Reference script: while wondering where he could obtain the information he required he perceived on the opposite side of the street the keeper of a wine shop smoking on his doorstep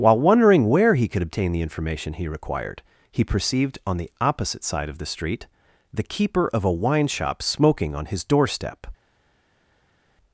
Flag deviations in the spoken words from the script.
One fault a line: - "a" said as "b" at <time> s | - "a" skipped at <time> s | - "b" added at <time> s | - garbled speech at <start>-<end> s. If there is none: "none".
none